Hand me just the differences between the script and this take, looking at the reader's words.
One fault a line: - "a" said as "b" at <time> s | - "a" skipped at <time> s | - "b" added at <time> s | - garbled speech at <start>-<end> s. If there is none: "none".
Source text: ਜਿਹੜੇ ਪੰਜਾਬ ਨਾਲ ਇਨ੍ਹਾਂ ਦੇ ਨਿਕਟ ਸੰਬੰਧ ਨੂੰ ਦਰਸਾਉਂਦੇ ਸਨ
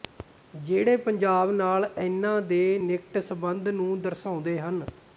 - "ਸਨ" said as "ਹਨ" at 4.6 s